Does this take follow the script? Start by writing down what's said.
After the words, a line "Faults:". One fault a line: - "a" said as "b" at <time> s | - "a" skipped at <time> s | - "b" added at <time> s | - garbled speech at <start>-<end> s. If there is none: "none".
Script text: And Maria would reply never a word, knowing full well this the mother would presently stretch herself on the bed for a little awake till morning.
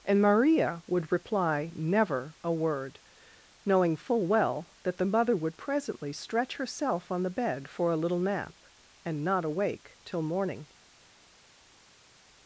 And Maria would reply never a word, knowing full well that the mother would presently stretch herself on the bed for a little nap and not awake till morning.
Faults:
- "this" said as "that" at 4.8 s
- "nap and not" added at 8.2 s